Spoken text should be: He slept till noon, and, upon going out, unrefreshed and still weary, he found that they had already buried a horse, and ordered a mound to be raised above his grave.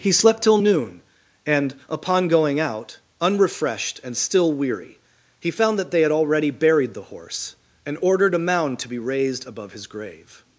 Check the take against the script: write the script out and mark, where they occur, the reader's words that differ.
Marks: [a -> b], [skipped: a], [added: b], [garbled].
He slept till noon, and, upon going out, unrefreshed and still weary, he found that they had already buried [a -> the] horse, and ordered a mound to be raised above his grave.